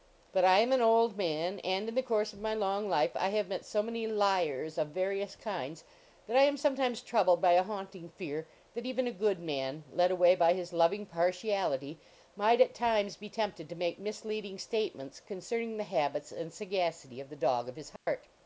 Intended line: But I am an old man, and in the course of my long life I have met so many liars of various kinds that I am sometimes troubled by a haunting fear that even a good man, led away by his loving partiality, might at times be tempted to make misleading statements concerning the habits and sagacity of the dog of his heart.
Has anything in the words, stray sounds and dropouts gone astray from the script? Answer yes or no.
yes